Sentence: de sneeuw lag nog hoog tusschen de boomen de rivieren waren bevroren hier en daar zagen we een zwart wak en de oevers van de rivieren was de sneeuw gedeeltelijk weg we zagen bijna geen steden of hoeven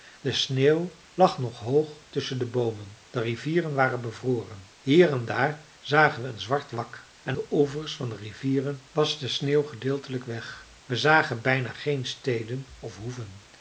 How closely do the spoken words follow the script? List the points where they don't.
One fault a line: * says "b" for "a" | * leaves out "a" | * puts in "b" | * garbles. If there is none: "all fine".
all fine